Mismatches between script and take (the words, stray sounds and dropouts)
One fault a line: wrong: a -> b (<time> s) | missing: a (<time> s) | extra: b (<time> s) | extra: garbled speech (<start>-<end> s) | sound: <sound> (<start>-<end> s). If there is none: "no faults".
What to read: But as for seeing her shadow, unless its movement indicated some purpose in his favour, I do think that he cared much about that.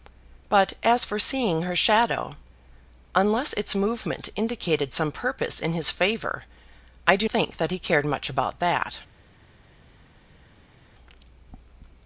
no faults